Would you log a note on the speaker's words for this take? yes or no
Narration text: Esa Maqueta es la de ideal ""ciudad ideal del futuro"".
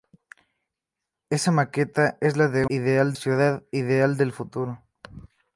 no